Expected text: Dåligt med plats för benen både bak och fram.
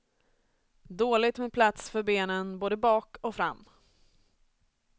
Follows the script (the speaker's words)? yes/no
yes